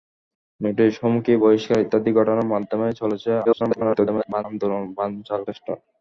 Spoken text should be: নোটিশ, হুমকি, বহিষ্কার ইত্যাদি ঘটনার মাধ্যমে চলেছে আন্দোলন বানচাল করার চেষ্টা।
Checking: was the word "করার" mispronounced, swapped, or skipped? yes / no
yes